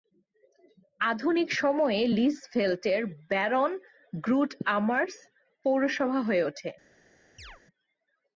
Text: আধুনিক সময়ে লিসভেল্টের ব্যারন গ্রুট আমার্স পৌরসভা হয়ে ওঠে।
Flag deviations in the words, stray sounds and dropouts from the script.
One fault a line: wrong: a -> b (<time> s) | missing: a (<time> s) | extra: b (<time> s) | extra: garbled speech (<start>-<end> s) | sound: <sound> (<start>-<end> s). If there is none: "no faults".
sound: chirp (7.4-7.6 s)